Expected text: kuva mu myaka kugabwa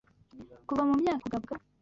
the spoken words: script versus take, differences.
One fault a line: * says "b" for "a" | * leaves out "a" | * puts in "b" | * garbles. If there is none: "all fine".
all fine